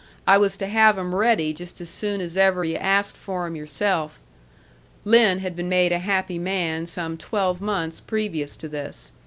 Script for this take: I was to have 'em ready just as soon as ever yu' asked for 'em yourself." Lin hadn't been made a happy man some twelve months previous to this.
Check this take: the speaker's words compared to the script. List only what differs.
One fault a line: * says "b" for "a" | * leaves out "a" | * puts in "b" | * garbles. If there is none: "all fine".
* says "had" for "hadn't"